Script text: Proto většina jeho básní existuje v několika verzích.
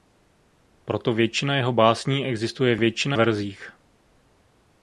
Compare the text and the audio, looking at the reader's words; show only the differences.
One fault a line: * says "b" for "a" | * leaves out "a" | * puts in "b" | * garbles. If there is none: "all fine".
* says "většina" for "několika"